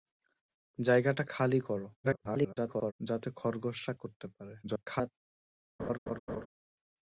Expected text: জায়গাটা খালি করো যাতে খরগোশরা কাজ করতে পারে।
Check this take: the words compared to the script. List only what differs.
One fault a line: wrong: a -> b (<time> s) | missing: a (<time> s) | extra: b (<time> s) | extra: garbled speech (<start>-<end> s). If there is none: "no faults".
extra: garbled speech (2.0-2.9 s)
missing: কাজ (3.9 s)
extra: garbled speech (4.6-5.1 s)